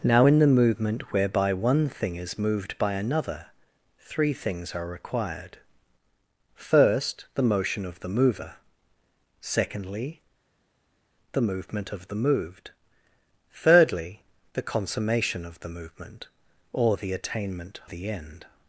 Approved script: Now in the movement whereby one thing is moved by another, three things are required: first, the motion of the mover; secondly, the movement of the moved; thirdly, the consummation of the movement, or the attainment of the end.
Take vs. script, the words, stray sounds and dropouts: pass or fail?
fail